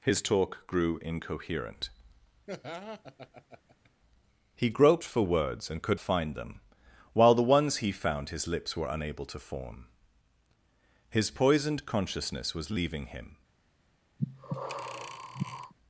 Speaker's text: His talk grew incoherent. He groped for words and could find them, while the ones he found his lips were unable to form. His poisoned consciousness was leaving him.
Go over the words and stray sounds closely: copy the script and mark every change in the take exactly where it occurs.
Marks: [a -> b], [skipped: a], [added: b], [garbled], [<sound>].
His talk grew incoherent. [laugh] He groped for words and could find them, while the ones he found his lips were unable to form. His poisoned consciousness was leaving him. [breath]